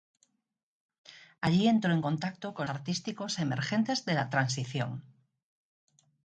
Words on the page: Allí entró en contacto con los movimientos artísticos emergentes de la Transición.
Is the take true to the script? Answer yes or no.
no